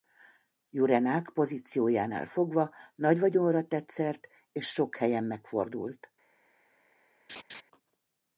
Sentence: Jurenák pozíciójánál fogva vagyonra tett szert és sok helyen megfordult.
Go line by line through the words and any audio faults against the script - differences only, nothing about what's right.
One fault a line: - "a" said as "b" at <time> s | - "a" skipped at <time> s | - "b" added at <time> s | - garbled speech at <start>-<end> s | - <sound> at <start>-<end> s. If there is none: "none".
- "nagy" added at 3.0 s
- laugh at 7.3-7.6 s